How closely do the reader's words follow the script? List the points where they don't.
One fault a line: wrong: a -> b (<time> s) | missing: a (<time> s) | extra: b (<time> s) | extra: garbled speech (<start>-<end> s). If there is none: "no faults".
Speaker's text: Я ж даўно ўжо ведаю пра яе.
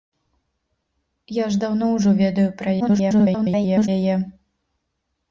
extra: garbled speech (2.8-3.9 s)